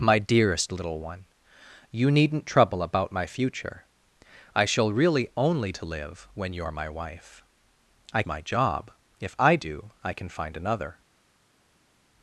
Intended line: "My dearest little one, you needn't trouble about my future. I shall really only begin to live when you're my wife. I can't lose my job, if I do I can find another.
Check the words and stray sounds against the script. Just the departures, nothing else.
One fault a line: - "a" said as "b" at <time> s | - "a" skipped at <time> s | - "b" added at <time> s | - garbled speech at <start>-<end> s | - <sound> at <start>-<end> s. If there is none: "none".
- "begin" skipped at 5.7 s
- "can't lose" skipped at 8.2 s